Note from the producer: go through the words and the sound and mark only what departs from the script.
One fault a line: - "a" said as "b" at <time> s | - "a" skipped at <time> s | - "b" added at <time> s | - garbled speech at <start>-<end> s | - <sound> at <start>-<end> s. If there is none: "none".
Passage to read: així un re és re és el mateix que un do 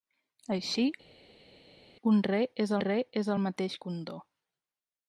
none